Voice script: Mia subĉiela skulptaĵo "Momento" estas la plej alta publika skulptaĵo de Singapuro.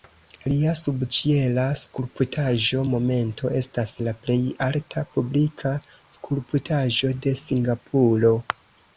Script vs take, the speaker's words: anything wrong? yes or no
yes